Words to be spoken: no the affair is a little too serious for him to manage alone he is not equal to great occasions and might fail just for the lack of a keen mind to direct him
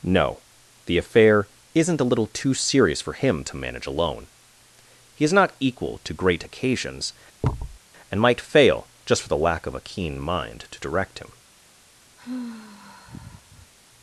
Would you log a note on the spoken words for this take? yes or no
yes